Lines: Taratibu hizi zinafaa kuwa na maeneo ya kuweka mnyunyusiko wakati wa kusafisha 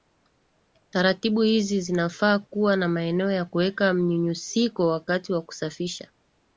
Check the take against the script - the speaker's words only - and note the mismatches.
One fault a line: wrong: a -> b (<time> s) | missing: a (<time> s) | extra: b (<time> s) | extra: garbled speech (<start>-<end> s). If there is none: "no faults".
no faults